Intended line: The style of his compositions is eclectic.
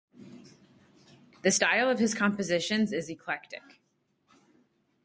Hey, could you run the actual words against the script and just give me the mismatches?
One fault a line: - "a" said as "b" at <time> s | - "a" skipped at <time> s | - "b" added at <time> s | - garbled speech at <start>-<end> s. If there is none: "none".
none